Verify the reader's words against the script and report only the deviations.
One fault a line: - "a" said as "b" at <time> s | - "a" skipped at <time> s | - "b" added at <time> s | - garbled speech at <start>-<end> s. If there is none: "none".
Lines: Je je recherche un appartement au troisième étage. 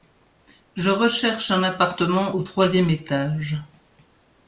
- "je" skipped at 0.9 s